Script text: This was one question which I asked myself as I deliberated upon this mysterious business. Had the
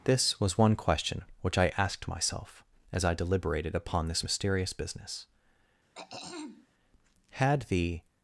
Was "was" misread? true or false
false